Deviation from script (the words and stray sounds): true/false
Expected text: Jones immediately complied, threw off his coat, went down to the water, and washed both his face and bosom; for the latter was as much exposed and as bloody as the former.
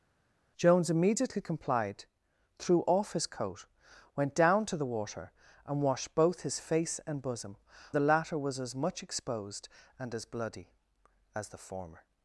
true